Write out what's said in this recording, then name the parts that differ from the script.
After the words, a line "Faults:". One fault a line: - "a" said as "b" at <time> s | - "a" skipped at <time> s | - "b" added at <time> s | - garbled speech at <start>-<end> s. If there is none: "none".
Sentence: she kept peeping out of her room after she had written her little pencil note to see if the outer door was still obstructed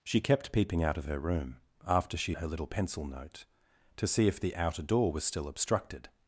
she kept peeping out of her room after she her little pencil note to see if the outer door was still obstructed
Faults:
- "had written" skipped at 2.4 s